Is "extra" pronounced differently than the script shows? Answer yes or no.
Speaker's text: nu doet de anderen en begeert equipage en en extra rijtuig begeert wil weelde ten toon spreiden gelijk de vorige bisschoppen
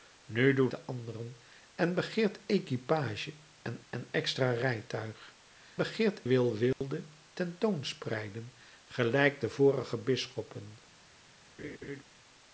no